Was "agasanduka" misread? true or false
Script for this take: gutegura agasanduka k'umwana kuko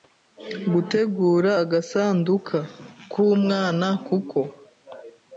false